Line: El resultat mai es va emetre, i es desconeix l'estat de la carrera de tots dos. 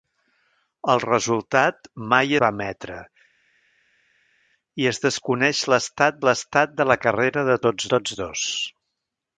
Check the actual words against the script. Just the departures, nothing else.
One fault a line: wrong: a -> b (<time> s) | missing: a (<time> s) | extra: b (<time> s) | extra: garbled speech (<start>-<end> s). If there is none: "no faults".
missing: es (2.3 s)
extra: l'estat (6.3 s)
extra: tots (7.9 s)